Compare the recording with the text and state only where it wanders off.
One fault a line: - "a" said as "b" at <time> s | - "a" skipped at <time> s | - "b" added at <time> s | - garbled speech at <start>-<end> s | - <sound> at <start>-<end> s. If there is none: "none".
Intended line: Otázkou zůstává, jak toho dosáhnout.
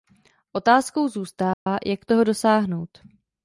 - dropout at 1.5-1.7 s